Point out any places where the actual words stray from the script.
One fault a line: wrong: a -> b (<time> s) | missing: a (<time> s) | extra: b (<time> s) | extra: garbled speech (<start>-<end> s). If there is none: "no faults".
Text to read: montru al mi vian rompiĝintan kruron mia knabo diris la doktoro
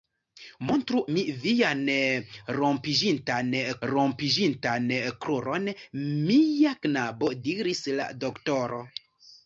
missing: al (1.0 s)
extra: rompiĝintan (3.9 s)